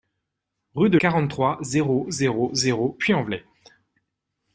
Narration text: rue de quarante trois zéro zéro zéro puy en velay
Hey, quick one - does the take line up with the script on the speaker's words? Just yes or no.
yes